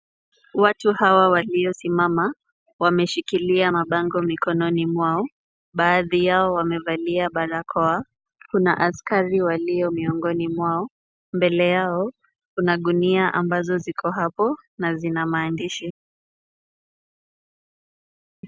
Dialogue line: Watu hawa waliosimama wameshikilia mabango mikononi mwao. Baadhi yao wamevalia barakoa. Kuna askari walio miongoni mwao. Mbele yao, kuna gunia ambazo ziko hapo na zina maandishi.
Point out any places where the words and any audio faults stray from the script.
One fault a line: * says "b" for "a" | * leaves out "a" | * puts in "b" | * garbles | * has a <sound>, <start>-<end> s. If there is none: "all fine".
all fine